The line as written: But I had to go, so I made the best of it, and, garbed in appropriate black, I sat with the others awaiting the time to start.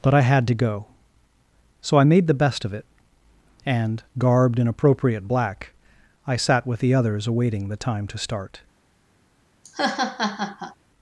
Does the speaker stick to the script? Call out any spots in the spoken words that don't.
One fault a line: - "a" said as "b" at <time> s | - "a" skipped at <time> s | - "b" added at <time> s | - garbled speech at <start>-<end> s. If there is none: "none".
none